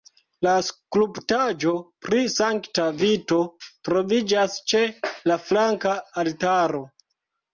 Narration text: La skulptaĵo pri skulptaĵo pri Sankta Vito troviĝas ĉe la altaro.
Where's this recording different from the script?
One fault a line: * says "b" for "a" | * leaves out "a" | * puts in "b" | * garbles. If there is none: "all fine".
* leaves out "skulptaĵo pri"
* puts in "flanka"